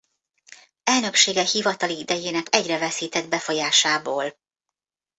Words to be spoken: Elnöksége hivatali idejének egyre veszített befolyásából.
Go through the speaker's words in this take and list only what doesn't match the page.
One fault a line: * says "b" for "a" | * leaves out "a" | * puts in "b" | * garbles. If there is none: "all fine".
all fine